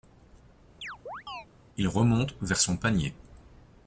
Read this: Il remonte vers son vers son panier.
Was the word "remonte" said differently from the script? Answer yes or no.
no